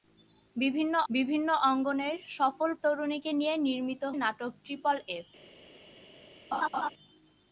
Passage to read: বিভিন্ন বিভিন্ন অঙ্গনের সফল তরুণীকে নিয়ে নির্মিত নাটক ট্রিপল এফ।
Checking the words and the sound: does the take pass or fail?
fail